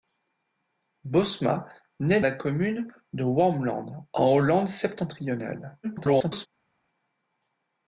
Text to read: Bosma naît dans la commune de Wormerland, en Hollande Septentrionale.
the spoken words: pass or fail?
fail